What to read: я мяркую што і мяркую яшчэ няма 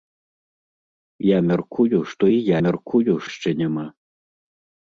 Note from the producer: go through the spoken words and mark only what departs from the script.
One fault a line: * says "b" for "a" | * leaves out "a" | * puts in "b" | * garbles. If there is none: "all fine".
all fine